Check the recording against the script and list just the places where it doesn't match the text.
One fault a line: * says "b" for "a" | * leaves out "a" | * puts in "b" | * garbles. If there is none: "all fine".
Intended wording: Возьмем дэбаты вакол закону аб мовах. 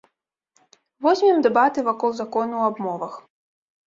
all fine